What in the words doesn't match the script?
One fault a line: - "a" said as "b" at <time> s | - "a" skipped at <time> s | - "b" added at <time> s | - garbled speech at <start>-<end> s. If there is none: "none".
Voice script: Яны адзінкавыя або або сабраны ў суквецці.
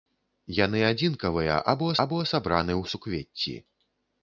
none